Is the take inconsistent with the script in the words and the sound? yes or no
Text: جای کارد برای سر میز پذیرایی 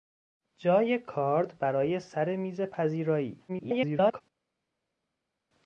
yes